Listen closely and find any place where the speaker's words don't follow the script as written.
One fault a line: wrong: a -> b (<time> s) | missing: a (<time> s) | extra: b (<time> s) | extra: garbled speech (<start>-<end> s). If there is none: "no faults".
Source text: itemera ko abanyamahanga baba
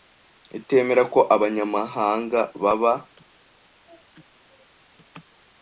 no faults